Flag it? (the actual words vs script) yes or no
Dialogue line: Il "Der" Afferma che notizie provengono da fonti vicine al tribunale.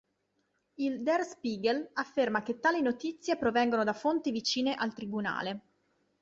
yes